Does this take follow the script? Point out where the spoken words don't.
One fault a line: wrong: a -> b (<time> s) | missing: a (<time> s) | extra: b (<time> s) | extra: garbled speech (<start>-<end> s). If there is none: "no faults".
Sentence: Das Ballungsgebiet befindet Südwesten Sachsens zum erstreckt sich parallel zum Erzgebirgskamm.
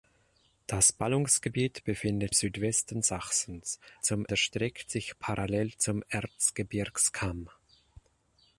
no faults